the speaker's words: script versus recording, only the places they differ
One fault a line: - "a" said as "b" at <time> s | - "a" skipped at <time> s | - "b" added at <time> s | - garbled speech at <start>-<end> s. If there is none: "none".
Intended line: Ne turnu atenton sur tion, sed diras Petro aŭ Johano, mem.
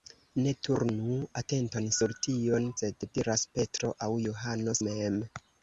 none